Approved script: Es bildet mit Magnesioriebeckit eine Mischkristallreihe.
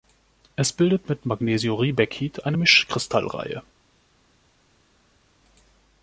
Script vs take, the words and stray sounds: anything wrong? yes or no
no